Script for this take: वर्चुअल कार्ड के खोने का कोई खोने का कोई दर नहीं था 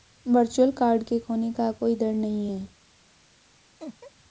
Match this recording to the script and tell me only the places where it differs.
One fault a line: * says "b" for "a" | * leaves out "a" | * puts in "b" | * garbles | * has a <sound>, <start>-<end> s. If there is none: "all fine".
* leaves out "खोने का कोई"
* says "है" for "था"
* has a laugh, 3.8-4.1 s